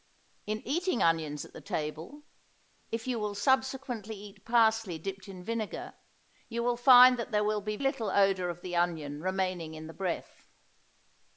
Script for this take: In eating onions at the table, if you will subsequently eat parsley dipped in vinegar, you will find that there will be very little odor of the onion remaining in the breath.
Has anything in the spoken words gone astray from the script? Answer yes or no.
yes